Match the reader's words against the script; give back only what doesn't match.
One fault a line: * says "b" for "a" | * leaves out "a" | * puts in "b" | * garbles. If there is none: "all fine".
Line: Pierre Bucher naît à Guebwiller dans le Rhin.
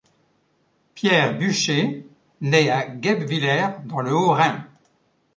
* puts in "Haut"